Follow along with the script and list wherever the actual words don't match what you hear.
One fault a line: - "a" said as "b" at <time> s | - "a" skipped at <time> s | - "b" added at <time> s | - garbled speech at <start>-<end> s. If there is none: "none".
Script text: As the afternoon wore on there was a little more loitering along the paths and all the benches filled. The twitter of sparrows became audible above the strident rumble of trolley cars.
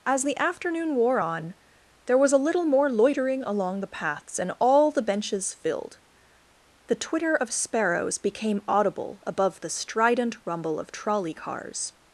none